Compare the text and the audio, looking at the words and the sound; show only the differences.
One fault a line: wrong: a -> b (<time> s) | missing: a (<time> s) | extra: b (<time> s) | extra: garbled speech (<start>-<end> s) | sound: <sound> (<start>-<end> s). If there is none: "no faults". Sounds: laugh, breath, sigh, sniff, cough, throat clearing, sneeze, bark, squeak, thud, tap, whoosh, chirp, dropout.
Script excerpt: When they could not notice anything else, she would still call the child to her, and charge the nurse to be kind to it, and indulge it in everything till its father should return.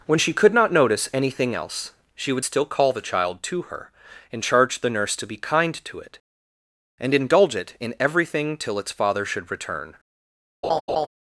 wrong: they -> she (0.2 s)
sound: laugh (10.6-11.1 s)